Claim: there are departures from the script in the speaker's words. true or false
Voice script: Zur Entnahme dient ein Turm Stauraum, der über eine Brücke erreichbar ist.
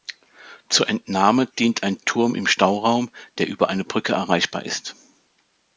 true